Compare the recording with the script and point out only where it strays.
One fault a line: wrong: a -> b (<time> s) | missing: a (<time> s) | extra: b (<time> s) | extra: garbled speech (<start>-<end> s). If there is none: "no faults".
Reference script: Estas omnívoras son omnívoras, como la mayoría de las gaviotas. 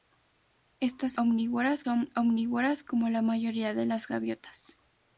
no faults